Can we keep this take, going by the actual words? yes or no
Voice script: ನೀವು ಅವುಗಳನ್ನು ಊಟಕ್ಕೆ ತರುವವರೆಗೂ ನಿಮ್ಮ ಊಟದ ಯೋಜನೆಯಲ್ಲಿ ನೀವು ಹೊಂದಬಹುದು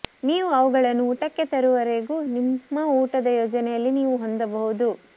yes